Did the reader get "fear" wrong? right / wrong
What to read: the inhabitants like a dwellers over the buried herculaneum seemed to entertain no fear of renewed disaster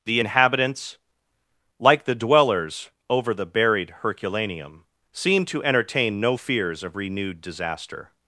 wrong